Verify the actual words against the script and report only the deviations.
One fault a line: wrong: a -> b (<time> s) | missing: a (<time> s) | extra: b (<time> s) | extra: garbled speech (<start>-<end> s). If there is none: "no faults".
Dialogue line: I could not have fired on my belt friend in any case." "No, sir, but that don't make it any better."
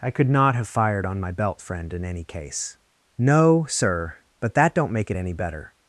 no faults